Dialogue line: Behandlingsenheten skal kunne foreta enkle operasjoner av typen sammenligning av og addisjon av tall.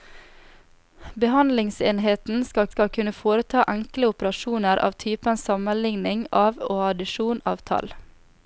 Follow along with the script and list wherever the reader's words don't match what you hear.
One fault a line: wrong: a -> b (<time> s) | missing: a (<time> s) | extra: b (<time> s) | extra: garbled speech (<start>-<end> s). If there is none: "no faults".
extra: skal (2.7 s)